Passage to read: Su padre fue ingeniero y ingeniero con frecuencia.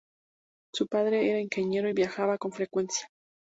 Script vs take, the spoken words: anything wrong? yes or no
yes